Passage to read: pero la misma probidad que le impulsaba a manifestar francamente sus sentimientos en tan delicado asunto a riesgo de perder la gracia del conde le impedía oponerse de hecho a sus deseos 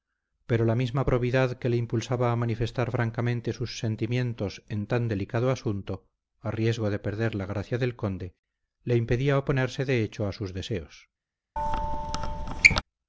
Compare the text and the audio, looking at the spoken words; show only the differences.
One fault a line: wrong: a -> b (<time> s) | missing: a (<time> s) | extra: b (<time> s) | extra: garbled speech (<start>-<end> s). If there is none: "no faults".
no faults